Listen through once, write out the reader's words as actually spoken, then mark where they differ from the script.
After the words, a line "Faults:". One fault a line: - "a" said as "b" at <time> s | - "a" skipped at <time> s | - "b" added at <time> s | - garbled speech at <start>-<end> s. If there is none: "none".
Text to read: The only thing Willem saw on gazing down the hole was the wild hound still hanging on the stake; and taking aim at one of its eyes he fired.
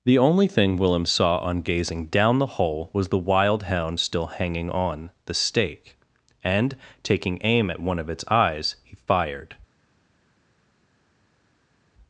The only thing Willem saw on gazing down the hole was the wild hound still hanging on the stake; and taking aim at one of its eyes he fired.
Faults:
none